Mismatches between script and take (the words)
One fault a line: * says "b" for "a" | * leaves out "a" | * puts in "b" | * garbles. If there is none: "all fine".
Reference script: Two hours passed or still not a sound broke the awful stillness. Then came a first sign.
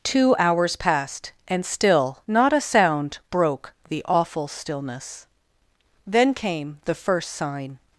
* says "and" for "or"
* says "the" for "a"